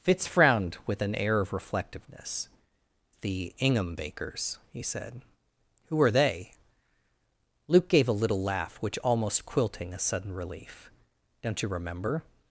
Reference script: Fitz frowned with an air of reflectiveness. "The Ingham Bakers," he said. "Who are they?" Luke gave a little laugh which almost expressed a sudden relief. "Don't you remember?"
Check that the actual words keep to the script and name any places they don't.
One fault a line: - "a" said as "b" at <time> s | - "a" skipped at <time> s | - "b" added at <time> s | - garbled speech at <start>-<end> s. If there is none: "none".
- "expressed" said as "quilting" at 9.4 s